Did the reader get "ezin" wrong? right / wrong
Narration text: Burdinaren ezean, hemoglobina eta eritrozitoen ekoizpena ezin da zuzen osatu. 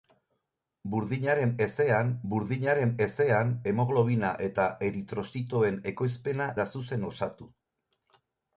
wrong